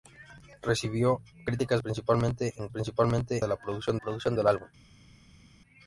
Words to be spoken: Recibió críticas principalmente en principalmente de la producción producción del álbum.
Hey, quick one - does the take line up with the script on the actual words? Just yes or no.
yes